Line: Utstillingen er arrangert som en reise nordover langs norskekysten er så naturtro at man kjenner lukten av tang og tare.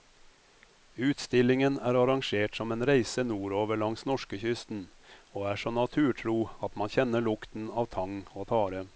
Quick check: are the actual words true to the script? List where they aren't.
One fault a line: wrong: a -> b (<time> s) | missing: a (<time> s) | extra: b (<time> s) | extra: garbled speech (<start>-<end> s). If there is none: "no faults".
extra: og (5.3 s)